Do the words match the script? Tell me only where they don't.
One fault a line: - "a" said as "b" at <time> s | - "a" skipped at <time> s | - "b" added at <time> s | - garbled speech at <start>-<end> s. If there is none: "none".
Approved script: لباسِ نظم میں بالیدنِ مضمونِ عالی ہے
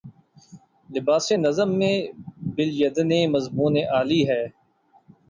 none